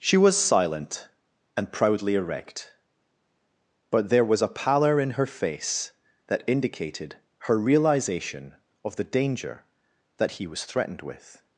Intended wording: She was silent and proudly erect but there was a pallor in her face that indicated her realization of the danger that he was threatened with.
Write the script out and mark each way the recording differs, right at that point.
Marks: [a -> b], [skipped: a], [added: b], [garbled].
She was silent and proudly erect but there was a pallor in her face that indicated her realization of the danger that he was threatened with.